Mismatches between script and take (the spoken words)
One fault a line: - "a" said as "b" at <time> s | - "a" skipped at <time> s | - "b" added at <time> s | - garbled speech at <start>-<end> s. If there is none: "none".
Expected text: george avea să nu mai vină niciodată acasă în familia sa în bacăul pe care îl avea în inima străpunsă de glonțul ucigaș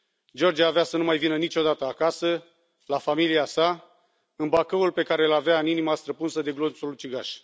- "în" said as "la" at 2.9 s